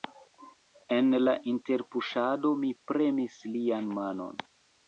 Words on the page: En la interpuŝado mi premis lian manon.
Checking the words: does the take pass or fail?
pass